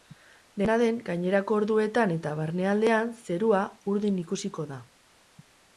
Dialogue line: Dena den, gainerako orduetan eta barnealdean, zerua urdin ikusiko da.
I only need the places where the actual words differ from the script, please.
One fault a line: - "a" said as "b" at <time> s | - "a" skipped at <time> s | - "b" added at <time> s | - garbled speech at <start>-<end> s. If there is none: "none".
none